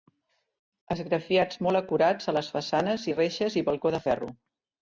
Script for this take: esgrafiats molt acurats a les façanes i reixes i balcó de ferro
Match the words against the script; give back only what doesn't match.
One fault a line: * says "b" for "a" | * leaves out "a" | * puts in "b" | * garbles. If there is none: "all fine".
all fine